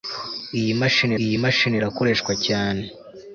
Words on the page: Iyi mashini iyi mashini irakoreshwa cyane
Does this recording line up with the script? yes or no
yes